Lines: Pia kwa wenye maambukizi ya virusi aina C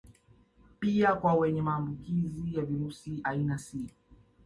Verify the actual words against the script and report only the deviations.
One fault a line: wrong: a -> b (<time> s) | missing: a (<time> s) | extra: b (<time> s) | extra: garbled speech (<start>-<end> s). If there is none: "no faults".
no faults